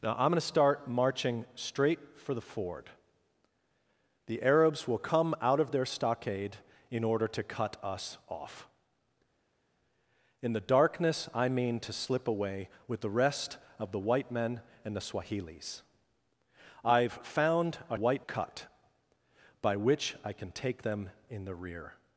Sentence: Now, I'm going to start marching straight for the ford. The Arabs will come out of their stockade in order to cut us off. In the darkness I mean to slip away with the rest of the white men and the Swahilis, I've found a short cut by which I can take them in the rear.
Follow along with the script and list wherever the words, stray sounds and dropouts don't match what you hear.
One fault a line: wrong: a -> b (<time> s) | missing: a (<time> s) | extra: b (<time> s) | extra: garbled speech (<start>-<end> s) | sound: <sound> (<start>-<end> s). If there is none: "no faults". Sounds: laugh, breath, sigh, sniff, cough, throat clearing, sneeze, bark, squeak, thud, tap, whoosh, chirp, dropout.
wrong: short -> white (17.9 s)